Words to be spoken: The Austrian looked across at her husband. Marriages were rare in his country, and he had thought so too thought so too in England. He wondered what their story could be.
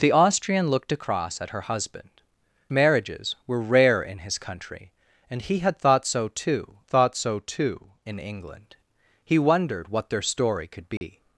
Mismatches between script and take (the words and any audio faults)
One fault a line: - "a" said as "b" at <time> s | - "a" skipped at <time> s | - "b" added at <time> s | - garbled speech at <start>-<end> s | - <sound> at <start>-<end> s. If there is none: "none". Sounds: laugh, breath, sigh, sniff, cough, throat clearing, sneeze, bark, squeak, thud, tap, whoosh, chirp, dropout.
- dropout at 11.0-11.0 s